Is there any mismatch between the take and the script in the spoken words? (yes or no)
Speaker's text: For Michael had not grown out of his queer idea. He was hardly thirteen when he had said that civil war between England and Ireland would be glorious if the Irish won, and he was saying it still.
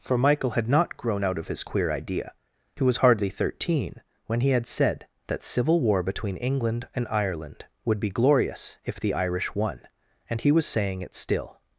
no